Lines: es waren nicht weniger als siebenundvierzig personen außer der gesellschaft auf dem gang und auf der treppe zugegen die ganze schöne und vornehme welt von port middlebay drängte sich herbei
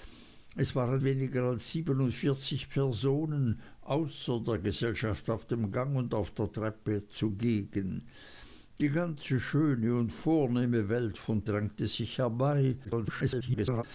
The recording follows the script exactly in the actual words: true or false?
false